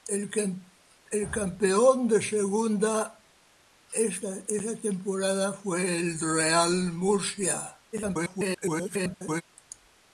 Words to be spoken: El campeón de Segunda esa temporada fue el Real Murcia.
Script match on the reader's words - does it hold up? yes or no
no